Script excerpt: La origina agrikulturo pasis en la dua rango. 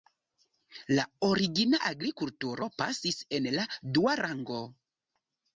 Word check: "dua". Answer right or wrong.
right